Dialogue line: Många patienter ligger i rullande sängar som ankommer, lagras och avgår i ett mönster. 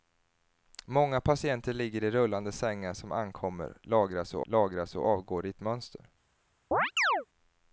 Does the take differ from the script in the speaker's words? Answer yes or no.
yes